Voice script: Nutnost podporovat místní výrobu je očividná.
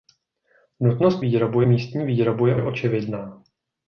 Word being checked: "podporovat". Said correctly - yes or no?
no